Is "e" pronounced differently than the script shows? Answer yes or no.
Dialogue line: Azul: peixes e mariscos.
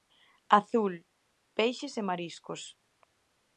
no